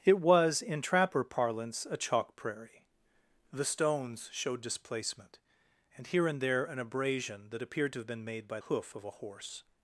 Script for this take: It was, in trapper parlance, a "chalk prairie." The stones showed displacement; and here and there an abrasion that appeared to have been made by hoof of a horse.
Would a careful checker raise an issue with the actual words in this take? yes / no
no